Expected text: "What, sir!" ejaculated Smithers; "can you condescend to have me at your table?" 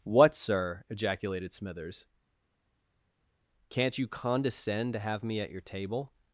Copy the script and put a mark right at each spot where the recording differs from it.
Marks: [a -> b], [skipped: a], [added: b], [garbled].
"What, sir!" ejaculated Smithers; ["can -> can't] you condescend to have me at your table?"